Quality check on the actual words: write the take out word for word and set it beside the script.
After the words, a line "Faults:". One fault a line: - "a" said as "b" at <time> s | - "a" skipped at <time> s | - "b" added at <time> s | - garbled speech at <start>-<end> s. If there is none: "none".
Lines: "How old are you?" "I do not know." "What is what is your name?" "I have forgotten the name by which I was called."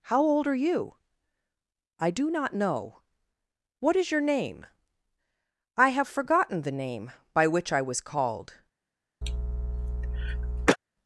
"How old are you?" "I do not know." "What is your name?" "I have forgotten the name by which I was called."
Faults:
- "what is" skipped at 4.1 s